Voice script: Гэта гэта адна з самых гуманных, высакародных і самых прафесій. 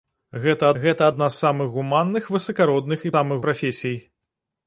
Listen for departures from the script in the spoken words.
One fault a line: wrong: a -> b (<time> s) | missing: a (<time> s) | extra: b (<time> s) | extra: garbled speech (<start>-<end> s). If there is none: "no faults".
no faults